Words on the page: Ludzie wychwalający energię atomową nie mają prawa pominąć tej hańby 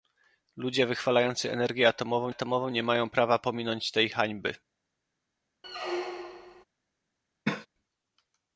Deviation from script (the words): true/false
true